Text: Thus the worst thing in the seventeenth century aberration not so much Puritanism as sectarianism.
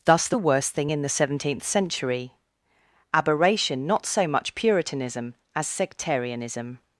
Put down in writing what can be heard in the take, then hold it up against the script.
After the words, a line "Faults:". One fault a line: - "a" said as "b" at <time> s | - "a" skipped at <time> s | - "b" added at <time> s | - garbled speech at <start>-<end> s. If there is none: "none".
Thus the worst thing in the seventeenth century aberration not so much Puritanism as sectarianism.
Faults:
none